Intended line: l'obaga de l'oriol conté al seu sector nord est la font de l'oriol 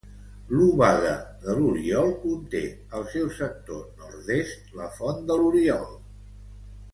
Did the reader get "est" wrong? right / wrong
right